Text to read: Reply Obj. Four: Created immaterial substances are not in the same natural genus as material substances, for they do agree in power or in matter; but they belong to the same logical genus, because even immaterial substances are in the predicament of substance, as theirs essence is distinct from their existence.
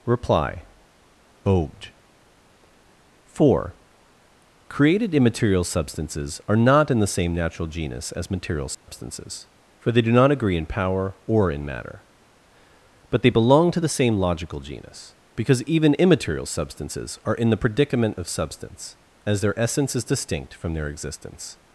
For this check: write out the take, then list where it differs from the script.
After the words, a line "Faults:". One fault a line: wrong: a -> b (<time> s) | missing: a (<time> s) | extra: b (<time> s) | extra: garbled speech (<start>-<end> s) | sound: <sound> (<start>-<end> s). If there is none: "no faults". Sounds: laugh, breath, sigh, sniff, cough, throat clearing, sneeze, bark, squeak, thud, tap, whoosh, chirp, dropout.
Reply Obj. Four: Created immaterial substances are not in the same natural genus as material substances, for they do not agree in power or in matter; but they belong to the same logical genus, because even immaterial substances are in the predicament of substance, as their essence is distinct from their existence.
Faults:
sound: dropout (8.7-8.9 s)
extra: not (10.1 s)
wrong: theirs -> their (19.4 s)